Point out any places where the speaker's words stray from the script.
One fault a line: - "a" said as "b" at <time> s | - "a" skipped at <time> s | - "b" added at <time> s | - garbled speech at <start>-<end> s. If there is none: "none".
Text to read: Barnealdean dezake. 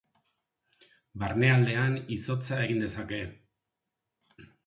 - "izotza egin" added at 2.2 s